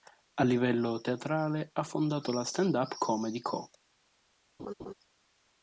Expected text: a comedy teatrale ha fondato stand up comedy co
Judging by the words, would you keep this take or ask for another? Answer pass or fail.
fail